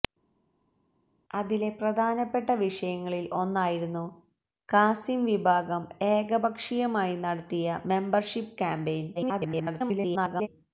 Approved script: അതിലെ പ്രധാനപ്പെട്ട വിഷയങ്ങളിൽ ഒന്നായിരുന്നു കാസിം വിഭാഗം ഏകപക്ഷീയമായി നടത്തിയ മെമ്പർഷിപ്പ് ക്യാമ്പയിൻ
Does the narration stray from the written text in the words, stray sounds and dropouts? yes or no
yes